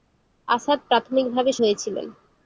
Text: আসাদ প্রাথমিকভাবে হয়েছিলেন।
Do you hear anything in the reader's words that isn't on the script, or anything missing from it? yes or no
no